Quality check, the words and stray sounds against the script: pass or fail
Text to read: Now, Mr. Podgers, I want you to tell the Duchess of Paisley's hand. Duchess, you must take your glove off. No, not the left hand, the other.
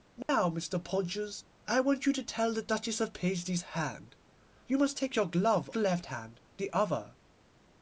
fail